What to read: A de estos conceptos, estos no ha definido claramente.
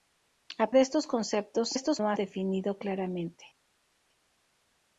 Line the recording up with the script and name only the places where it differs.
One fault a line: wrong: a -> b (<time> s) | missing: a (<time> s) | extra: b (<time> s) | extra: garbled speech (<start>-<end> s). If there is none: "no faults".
no faults